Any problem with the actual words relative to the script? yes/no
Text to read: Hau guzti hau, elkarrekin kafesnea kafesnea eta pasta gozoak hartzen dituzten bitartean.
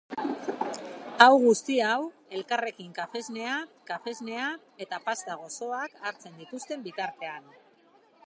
no